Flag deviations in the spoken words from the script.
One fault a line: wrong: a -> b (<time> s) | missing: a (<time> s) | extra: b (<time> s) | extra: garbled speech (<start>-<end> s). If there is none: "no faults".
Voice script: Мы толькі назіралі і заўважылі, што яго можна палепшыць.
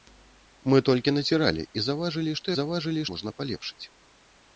wrong: яго -> заўважылі (2.6 s)